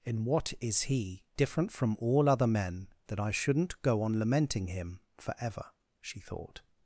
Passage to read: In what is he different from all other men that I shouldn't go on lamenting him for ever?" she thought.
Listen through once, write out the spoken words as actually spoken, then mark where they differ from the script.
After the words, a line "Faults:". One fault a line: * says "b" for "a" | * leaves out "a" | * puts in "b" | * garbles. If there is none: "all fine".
In what is he different from all other men that I shouldn't go on lamenting him for ever?" she thought.
Faults:
all fine